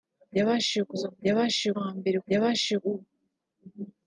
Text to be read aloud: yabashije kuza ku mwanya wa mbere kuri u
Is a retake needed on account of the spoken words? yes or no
yes